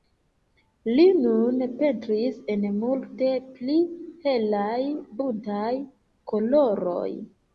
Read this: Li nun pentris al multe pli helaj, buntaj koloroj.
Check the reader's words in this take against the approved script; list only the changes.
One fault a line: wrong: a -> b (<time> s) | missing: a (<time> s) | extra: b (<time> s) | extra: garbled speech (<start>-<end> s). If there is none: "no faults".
wrong: al -> en (2.5 s)